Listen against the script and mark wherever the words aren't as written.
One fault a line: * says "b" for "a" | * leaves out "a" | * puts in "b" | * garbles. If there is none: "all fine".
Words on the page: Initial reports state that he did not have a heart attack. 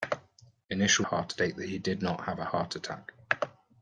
* says "heart" for "reports"